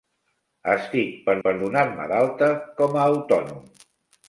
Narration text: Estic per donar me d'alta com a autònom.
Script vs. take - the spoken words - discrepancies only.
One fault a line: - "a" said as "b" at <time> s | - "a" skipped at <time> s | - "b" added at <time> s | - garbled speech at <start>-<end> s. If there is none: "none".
- "per" added at 1.4 s